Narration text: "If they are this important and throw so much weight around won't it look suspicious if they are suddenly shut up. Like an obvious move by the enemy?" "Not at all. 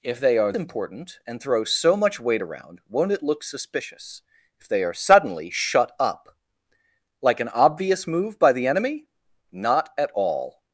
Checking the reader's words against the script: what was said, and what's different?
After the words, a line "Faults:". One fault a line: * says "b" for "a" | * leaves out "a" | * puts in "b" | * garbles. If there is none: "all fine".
"If they are important and throw so much weight around won't it look suspicious if they are suddenly shut up. Like an obvious move by the enemy?" "Not at all.
Faults:
* leaves out "this"